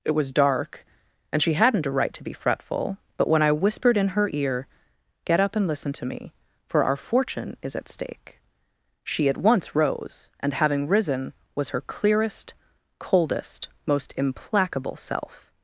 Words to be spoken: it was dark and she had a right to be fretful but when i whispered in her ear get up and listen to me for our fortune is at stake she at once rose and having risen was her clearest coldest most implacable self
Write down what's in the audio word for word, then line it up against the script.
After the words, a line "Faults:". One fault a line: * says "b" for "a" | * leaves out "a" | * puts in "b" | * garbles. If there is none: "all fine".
it was dark and she hadn't a right to be fretful but when i whispered in her ear get up and listen to me for our fortune is at stake she at once rose and having risen was her clearest coldest most implacable self
Faults:
* says "hadn't" for "had"